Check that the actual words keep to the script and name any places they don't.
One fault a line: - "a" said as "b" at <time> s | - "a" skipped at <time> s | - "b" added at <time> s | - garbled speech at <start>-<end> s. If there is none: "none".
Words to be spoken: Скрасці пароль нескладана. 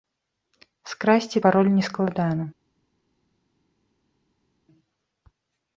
none